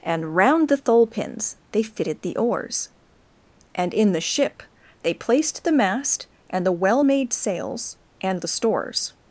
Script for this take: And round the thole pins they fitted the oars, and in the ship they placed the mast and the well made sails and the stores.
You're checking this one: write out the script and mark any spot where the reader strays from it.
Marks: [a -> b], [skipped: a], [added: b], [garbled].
And round the thole pins they fitted the oars, and in the ship they placed the mast and the well made sails and the stores.